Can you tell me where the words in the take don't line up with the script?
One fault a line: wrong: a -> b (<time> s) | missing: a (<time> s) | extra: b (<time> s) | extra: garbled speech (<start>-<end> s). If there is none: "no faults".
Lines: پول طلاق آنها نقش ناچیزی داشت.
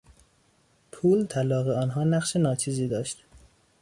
no faults